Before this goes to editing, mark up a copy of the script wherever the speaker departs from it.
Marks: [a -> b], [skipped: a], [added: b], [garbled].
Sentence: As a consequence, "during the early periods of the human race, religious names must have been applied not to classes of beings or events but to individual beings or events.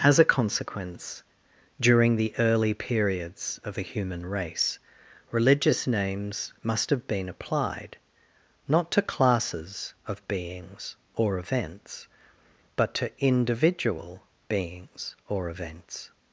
As a consequence, "during the early periods of the human race, religious names must have been applied not to classes of beings or events but to individual beings or events.